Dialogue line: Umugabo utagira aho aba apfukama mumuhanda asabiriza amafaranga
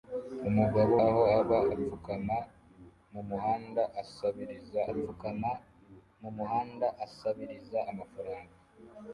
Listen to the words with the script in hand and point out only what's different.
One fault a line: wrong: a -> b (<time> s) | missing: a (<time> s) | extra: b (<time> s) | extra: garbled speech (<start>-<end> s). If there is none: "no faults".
missing: utagira (0.9 s)
extra: apfukama mumuhanda asabiriza (4.9 s)